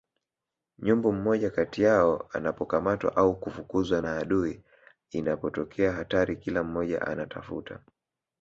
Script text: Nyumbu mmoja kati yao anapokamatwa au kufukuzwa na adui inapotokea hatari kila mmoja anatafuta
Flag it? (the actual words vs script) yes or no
no